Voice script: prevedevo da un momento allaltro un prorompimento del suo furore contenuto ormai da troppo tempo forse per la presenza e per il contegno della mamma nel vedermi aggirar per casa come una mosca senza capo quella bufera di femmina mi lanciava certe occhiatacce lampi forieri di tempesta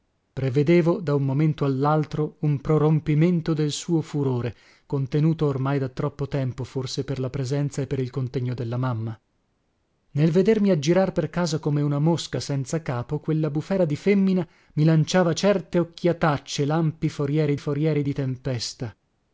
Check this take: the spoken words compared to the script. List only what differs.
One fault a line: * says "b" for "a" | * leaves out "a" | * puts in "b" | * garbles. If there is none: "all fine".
* puts in "forieri"